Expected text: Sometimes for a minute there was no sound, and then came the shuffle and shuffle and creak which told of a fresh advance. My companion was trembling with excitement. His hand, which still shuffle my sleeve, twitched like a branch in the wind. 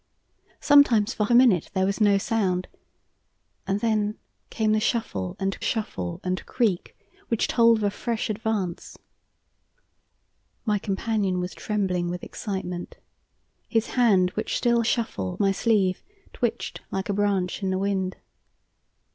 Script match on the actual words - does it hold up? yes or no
yes